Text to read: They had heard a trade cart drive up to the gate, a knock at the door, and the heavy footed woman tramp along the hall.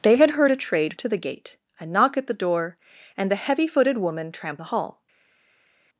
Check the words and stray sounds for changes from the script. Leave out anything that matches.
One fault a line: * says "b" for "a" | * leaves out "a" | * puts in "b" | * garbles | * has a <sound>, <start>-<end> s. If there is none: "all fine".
* leaves out "cart drive up"
* leaves out "along"